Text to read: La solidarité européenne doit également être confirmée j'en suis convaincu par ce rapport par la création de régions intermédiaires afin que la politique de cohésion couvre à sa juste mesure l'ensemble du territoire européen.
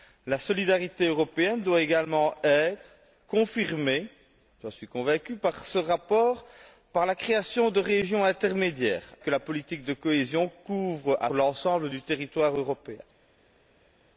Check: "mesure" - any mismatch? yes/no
yes